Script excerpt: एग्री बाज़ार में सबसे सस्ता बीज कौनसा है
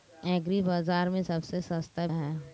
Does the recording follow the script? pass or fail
fail